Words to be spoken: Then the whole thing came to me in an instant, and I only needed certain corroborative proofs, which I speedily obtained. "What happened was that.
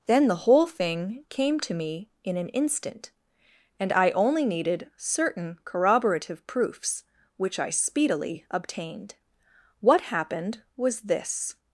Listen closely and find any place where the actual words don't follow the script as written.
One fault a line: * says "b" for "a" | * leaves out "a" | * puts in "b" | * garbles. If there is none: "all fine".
* says "this" for "that"